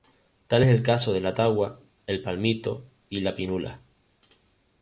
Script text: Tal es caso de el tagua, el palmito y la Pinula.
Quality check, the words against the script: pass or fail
fail